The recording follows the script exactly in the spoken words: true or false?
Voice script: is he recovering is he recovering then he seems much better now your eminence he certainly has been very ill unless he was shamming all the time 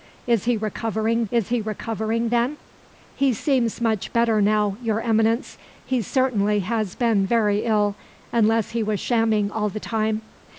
true